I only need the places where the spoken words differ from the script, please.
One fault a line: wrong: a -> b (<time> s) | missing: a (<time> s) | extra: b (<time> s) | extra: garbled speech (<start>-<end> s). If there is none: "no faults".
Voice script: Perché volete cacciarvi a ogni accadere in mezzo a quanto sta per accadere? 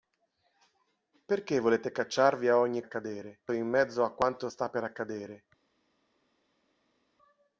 no faults